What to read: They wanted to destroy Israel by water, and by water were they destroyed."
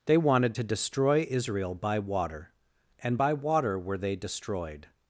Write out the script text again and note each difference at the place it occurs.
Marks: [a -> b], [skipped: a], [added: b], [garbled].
They wanted to destroy Israel by water, and by water were they destroyed."